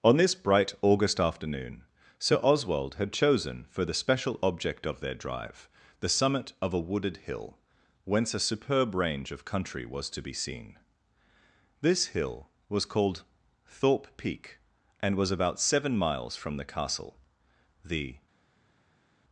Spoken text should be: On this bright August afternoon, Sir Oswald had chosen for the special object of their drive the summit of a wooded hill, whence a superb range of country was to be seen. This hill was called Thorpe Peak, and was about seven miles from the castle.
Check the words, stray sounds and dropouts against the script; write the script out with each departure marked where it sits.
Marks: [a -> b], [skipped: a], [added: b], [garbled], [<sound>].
On this bright August afternoon, Sir Oswald had chosen for the special object of their drive the summit of a wooded hill, whence a superb range of country was to be seen. This hill was called Thorpe Peak, and was about seven miles from the castle. [added: The]